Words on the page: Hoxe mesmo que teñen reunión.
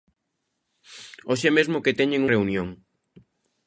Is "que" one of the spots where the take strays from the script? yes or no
no